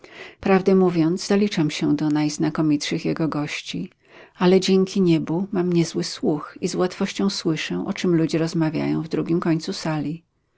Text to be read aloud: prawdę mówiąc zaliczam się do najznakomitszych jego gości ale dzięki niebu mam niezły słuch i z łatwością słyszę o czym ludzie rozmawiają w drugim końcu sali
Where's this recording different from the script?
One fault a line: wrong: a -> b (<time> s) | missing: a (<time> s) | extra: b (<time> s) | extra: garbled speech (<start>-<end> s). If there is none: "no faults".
no faults